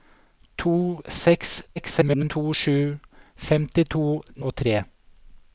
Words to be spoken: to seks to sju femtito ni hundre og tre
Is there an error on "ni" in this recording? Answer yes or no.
yes